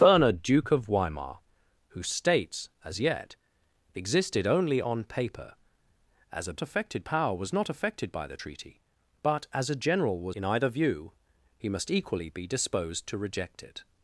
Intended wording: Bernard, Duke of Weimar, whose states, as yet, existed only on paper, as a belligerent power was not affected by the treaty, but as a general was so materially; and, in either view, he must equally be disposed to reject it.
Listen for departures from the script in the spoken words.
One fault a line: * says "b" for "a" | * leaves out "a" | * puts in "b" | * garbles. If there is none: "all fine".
* says "affected" for "belligerent"
* leaves out "so materially and"